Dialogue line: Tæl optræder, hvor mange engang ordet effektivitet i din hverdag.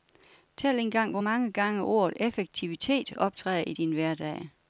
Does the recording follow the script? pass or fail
fail